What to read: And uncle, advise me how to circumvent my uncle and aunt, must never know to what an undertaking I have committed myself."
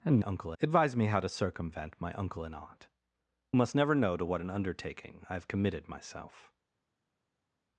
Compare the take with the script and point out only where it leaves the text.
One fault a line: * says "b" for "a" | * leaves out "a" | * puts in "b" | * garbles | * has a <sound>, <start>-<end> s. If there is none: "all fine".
all fine